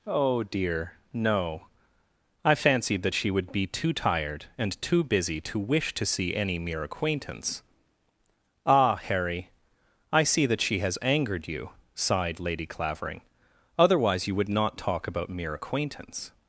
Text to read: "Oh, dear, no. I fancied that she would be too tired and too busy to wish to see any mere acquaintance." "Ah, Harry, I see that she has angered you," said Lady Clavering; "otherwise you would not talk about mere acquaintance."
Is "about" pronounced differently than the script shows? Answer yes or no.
no